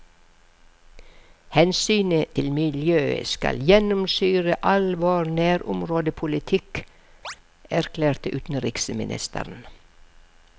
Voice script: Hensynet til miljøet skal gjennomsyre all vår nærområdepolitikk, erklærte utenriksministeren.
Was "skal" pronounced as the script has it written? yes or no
yes